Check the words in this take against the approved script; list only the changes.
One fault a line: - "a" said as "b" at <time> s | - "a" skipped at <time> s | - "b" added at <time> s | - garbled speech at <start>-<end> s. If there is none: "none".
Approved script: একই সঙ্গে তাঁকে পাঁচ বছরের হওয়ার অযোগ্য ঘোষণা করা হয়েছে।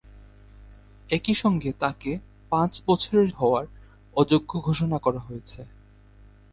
none